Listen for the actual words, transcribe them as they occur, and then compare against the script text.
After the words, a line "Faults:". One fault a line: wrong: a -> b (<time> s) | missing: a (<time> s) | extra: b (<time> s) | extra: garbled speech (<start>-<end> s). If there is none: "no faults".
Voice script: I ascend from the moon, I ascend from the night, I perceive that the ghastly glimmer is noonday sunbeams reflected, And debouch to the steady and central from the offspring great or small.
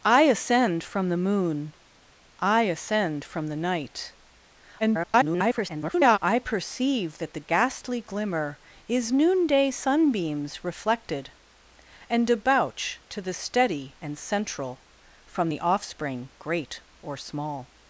I ascend from the moon, I ascend from the night, [garbled] I perceive that the ghastly glimmer is noonday sunbeams reflected, And debouch to the steady and central from the offspring great or small.
Faults:
extra: garbled speech (4.8-6.2 s)